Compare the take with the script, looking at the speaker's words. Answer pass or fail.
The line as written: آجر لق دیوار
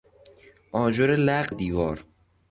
pass